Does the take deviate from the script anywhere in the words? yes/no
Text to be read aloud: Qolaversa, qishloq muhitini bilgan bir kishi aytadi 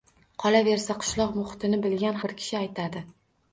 no